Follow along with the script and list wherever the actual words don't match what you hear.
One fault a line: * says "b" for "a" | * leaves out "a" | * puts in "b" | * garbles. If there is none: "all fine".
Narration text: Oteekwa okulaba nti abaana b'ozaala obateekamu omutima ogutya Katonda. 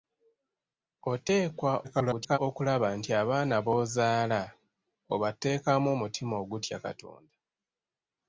* garbles